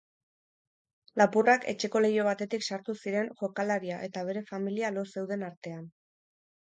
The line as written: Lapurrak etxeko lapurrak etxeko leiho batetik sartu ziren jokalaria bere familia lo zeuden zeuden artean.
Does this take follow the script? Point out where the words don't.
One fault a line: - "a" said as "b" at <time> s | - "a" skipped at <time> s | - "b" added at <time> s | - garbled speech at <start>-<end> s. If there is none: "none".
- "lapurrak etxeko" skipped at 2.0 s
- "eta" added at 4.1 s
- "zeuden" skipped at 5.4 s